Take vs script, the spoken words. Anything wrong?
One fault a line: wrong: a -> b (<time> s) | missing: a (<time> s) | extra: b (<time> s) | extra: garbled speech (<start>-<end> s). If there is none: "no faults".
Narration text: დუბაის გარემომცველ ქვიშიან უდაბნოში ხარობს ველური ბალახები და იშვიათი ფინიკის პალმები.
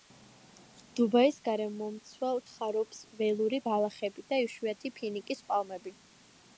missing: ქვიშიან უდაბნოში (2.4 s)